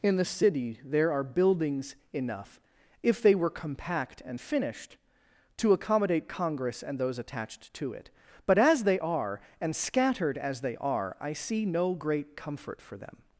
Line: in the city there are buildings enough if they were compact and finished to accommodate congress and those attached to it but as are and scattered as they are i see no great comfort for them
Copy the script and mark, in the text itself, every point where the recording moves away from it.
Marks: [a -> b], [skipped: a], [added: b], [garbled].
in the city there are buildings enough if they were compact and finished to accommodate congress and those attached to it but as [added: they] are and scattered as they are i see no great comfort for them